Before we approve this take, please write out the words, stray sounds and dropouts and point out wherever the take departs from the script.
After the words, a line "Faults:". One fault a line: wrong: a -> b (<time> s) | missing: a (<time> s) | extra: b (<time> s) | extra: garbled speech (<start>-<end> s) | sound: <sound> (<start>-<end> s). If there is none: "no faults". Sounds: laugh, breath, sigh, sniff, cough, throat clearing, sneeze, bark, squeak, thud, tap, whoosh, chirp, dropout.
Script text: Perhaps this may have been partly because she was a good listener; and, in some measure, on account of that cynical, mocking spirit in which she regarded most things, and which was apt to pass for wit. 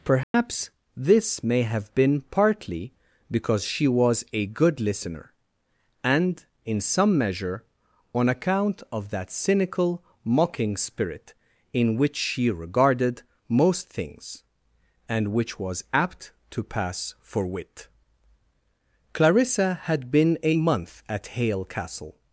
Perhaps this may have been partly because she was a good listener; and, in some measure, on account of that cynical, mocking spirit in which she regarded most things, and which was apt to pass for wit. Clarissa had been a month at Hale Castle
Faults:
sound: dropout (0.2-0.3 s)
extra: Clarissa had been a month at Hale Castle (19.1 s)